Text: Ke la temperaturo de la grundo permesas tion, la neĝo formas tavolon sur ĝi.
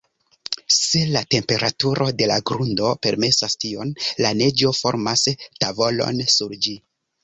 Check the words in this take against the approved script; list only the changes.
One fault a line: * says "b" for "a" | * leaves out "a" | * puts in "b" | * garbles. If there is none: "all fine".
* says "Se" for "Ke"